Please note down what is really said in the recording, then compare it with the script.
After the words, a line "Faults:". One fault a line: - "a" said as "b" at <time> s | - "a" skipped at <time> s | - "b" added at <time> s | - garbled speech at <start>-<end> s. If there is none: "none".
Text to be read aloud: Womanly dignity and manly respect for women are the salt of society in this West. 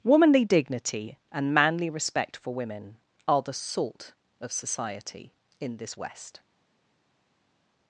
Womanly dignity and manly respect for women are the salt of society in this West.
Faults:
none